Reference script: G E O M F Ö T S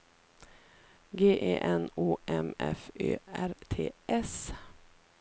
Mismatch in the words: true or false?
true